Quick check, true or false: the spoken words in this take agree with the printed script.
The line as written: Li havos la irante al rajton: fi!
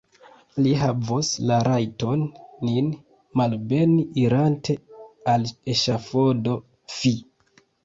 false